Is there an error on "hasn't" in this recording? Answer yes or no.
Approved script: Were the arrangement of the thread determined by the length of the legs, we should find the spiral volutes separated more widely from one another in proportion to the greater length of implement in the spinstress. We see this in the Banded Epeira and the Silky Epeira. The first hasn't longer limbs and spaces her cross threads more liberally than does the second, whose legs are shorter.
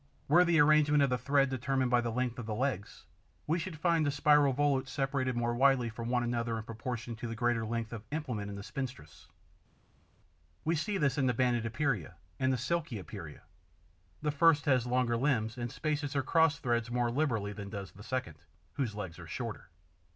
yes